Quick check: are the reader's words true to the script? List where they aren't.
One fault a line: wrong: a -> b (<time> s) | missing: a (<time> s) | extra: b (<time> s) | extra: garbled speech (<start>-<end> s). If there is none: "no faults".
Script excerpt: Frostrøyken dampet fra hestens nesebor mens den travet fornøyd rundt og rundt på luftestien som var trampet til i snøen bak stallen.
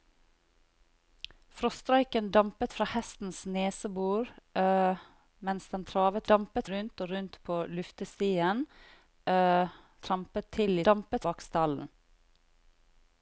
wrong: fornøyd -> dampet (6.3 s)
missing: som var (8.7 s)
wrong: snøen -> dampet (10.8 s)